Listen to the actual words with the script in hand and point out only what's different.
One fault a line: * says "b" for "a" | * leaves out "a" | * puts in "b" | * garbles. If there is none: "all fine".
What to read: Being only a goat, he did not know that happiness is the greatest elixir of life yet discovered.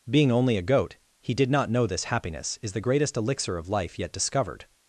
* says "this" for "that"